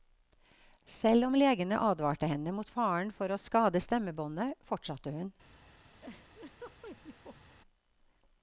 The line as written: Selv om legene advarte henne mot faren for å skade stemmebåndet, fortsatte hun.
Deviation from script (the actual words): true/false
false